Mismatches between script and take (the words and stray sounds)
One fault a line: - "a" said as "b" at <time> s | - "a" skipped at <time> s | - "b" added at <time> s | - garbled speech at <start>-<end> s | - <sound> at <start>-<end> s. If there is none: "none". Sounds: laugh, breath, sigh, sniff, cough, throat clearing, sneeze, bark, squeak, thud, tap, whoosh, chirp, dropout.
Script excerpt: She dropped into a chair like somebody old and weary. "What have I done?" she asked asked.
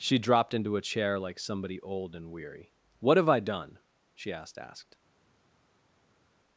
none